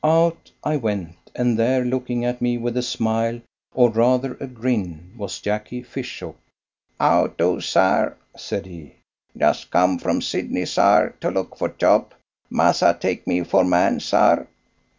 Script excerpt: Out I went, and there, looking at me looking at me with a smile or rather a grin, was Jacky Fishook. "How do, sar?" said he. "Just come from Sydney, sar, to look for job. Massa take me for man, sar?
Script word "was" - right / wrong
right